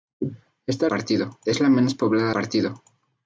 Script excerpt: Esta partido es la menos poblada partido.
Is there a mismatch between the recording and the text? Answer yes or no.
no